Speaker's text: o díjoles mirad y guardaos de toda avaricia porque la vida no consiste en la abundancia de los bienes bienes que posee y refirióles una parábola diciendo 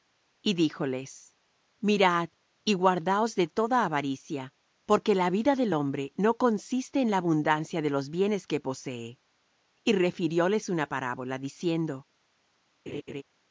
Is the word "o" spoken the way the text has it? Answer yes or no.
no